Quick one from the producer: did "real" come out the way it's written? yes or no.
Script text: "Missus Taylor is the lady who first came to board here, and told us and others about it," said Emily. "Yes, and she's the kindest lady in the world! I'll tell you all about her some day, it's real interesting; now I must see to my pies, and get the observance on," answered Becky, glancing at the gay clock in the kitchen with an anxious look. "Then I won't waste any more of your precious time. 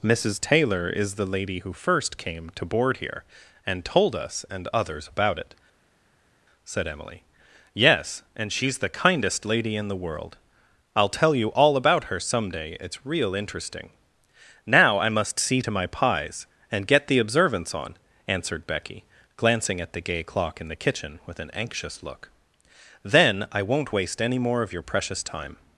yes